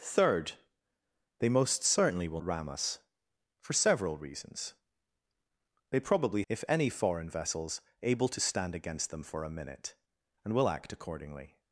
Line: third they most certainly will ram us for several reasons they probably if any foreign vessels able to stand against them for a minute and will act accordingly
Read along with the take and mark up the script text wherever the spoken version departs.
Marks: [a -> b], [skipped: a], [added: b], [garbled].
third they most certainly will ram us for several reasons they probably if any foreign vessels able to stand against them for a minute and will act accordingly